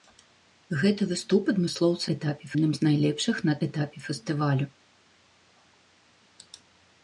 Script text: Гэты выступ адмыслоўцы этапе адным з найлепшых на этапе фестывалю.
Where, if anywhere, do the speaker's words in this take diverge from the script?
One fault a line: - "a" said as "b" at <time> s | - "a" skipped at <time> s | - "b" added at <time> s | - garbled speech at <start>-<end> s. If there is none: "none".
none